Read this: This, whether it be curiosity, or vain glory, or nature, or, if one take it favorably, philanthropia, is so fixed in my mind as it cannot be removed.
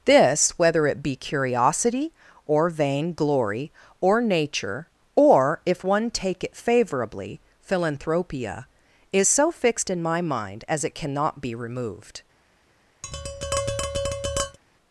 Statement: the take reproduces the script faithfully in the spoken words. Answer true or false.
true